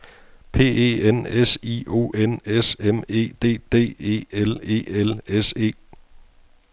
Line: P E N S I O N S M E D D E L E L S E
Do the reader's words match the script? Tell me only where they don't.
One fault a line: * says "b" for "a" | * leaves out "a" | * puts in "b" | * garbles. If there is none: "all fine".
all fine